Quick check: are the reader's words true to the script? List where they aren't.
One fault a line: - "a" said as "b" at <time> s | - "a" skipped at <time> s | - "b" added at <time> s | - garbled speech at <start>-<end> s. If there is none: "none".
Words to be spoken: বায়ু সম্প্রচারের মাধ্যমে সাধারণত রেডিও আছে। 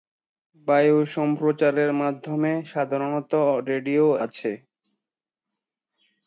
none